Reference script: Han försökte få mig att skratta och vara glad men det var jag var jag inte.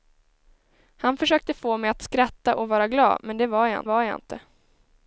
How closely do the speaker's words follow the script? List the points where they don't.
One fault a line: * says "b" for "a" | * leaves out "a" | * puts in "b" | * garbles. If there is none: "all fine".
all fine